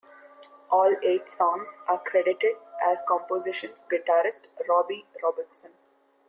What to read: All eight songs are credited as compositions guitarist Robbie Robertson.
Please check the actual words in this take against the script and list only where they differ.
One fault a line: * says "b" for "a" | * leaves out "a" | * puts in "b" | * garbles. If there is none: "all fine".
all fine